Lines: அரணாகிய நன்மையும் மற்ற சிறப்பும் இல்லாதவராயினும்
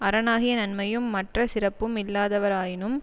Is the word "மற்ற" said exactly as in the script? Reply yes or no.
yes